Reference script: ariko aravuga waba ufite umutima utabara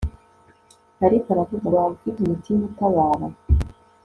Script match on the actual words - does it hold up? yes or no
yes